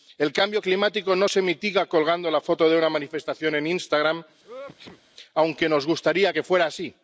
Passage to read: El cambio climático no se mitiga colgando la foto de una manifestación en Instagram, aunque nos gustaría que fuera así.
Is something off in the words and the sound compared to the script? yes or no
yes